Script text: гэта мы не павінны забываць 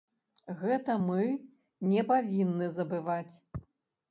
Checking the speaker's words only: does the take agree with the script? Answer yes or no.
yes